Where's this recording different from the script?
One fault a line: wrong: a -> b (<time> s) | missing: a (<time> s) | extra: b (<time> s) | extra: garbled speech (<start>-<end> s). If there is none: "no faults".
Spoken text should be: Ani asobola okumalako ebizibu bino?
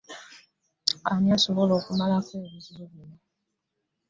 no faults